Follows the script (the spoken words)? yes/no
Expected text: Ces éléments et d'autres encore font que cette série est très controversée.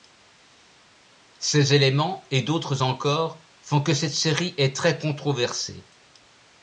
yes